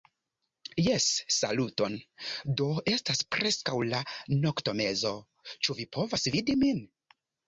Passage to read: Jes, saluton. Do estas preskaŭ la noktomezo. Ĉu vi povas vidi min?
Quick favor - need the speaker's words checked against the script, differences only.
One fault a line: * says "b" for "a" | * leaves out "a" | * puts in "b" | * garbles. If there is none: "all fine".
all fine